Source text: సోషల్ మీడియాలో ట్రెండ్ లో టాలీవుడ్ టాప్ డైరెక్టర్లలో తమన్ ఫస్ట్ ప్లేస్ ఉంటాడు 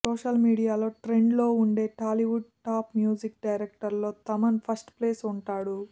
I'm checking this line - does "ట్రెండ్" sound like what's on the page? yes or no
yes